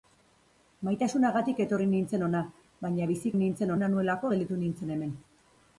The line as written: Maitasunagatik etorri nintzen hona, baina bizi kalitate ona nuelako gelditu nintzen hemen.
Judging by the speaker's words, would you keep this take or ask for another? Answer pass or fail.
fail